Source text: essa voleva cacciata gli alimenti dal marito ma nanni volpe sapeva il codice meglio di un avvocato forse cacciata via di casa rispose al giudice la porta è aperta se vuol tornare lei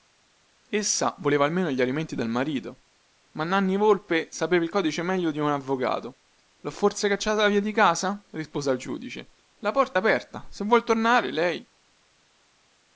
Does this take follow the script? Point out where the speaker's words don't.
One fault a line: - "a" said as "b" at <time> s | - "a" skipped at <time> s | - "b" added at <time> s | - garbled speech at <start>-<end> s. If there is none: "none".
- "cacciata" said as "almeno" at 1.4 s
- "lho" added at 6.6 s